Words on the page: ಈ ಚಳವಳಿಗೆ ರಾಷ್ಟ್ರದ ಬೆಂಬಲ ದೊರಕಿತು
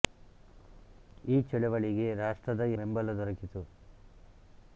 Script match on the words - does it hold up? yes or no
yes